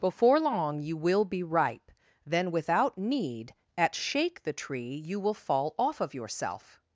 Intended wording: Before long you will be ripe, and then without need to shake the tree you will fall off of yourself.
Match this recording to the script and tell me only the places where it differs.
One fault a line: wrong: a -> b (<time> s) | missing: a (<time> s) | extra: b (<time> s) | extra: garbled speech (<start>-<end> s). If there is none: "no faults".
missing: and (1.9 s)
wrong: to -> at (3.8 s)